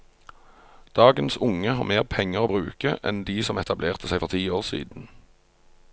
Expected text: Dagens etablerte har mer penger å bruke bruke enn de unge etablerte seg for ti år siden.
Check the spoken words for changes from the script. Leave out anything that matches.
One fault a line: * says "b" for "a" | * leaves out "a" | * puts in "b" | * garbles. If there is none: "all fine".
* says "unge" for "etablerte"
* leaves out "bruke"
* says "som" for "unge"